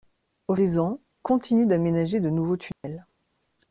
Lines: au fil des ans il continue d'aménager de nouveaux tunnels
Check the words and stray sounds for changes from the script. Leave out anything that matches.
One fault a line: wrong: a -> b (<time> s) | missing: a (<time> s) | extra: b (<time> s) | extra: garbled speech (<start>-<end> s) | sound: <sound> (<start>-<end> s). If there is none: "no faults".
missing: fil (0.6 s)
missing: il (1.0 s)
sound: dropout (2.7-2.8 s)